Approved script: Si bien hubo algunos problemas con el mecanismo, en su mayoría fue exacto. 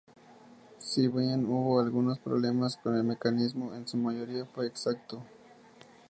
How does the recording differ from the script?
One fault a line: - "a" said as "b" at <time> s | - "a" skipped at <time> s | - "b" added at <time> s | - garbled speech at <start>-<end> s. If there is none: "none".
none